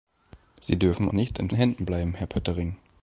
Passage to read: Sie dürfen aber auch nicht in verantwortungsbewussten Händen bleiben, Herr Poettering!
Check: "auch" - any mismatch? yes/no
yes